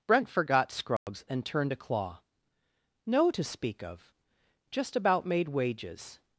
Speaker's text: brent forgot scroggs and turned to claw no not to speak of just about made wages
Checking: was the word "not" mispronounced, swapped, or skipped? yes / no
yes